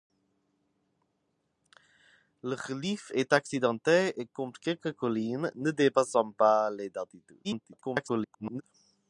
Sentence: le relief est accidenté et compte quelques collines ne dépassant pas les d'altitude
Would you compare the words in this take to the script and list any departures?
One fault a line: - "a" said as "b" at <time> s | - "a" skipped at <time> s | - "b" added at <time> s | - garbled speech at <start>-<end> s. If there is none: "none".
- garbled speech at 7.4-8.6 s